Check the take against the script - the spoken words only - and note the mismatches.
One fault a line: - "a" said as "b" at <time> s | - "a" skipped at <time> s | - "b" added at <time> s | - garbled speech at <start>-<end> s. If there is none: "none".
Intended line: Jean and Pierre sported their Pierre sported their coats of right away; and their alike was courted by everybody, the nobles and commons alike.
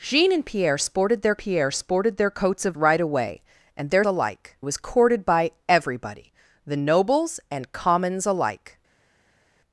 none